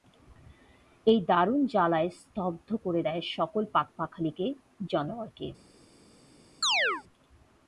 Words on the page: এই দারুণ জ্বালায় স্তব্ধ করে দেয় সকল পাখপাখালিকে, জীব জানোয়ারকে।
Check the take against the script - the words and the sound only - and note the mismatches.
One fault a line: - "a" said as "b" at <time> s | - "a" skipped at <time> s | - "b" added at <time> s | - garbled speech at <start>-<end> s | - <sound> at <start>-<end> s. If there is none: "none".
- "জীব" skipped at 4.5 s
- chirp at 6.6-7.0 s